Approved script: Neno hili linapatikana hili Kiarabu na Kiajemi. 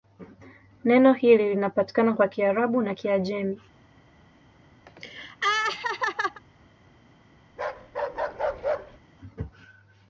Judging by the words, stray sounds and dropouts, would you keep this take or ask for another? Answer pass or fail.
fail